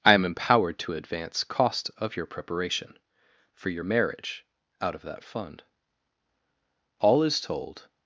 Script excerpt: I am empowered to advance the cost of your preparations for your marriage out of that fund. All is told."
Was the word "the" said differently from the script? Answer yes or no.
yes